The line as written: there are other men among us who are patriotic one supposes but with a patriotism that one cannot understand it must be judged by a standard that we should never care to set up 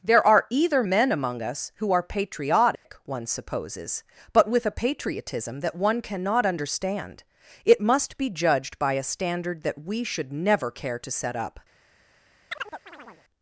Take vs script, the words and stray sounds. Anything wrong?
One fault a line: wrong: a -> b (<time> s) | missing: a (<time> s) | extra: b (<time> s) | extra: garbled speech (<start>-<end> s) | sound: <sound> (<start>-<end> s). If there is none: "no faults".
wrong: other -> either (0.5 s)
sound: dropout (2.7-2.9 s)
sound: chirp (12.5-13.2 s)